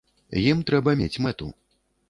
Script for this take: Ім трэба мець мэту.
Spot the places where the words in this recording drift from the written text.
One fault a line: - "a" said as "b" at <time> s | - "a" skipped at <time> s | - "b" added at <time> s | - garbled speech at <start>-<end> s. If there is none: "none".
none